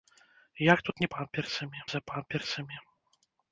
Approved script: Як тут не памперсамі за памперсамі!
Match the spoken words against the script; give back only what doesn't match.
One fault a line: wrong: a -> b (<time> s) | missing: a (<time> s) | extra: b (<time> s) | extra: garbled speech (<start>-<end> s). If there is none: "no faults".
no faults